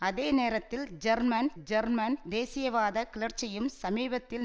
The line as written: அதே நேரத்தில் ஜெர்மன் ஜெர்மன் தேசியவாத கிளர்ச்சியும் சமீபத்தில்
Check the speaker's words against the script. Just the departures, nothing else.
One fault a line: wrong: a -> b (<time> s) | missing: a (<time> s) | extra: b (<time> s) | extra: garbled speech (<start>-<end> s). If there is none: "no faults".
no faults